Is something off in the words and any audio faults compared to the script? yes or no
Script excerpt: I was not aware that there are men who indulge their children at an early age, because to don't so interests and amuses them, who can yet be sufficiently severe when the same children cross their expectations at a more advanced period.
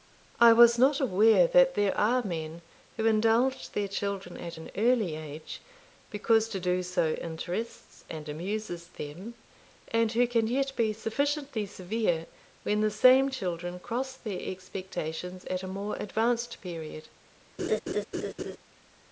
yes